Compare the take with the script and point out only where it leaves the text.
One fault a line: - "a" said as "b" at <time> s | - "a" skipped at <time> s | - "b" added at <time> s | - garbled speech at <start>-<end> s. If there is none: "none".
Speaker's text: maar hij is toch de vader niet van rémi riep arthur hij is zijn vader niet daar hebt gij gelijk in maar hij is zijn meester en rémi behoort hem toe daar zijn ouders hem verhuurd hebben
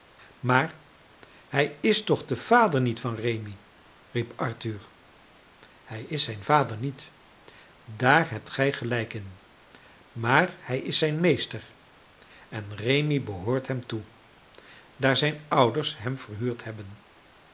none